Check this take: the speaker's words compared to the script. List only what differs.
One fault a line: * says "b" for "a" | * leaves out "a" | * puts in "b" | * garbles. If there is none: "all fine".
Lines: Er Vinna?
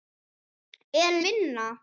all fine